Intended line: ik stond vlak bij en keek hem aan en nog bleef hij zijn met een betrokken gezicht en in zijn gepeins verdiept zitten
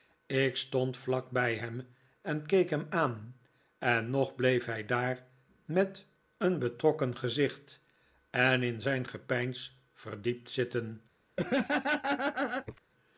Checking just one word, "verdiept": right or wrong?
right